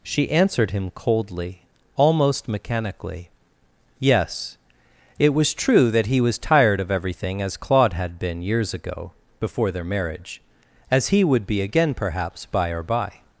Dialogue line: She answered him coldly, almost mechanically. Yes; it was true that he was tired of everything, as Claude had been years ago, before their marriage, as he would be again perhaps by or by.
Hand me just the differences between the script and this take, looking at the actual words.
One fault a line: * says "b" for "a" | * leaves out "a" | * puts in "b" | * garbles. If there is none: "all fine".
all fine